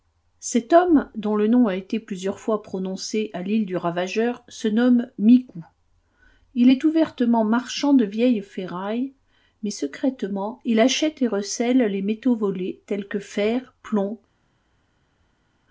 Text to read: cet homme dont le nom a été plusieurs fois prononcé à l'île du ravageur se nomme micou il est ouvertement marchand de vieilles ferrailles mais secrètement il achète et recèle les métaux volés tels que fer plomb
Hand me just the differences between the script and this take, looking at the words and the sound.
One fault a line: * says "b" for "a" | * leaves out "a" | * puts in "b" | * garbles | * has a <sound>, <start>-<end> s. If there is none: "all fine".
all fine